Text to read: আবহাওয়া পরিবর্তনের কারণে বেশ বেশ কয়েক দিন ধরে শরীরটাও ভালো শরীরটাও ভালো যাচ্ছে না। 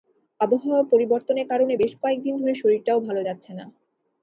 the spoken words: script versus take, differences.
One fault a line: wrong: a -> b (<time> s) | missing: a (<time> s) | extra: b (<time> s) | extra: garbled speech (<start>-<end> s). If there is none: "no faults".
missing: বেশ (1.9 s)
missing: শরীরটাও ভালো (3.2 s)